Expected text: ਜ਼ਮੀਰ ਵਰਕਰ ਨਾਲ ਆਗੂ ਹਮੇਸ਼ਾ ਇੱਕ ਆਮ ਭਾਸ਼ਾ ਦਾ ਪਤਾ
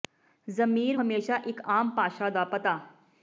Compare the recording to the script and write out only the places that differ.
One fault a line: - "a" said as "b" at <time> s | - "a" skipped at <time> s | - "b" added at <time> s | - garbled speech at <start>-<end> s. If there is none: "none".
- "ਵਰਕਰ ਨਾਲ ਆਗੂ" skipped at 1.0 s